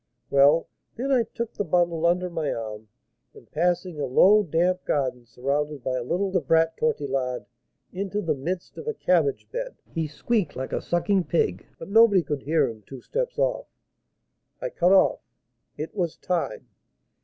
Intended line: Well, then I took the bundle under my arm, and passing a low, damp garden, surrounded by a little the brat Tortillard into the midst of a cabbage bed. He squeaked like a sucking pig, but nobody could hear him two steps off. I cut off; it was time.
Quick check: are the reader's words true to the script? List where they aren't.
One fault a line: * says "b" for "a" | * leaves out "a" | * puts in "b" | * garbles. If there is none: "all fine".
all fine